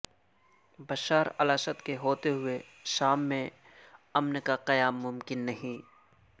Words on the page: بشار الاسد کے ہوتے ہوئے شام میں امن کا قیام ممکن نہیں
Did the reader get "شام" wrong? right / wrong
right